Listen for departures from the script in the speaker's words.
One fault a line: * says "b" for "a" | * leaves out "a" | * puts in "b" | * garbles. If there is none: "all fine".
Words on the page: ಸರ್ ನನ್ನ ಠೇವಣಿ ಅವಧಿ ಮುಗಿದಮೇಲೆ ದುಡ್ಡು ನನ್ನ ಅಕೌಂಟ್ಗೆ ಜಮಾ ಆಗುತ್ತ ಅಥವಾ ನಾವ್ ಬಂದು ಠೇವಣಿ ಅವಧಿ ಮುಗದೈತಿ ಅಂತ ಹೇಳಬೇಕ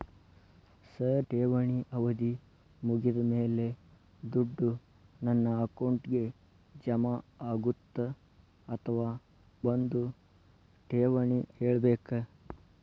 * leaves out "ನನ್ನ"
* leaves out "ನಾವ್"
* leaves out "ಅವಧಿ ಮುಗದೈತಿ ಅಂತ"